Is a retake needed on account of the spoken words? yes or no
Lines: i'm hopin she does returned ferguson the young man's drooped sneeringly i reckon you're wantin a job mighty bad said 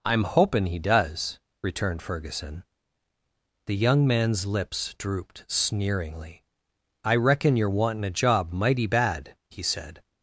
yes